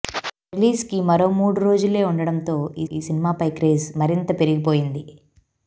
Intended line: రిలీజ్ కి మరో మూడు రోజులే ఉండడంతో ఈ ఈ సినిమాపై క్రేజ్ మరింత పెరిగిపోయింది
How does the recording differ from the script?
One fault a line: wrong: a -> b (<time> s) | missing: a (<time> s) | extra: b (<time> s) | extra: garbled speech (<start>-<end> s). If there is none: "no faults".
no faults